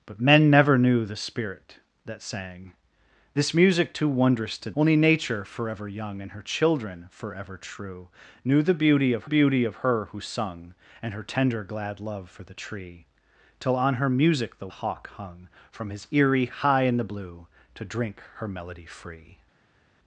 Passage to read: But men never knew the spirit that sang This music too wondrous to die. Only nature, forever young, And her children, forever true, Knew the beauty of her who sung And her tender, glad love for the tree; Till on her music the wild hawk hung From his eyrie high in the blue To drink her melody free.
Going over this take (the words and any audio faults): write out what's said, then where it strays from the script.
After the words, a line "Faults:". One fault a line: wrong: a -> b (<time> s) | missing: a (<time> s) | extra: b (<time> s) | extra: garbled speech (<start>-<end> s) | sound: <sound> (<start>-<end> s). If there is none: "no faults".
But men never knew the spirit that sang This music too wondrous to. Only nature, forever young, And her children, forever true, Knew the beauty of beauty of her who sung And her tender, glad love for the tree; Till on her music the hawk hung From his eyrie high in the blue To drink her melody free.
Faults:
missing: die (4.7 s)
extra: beauty of (9.3 s)
missing: wild (14.7 s)